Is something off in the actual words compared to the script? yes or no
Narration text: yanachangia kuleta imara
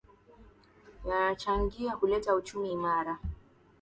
yes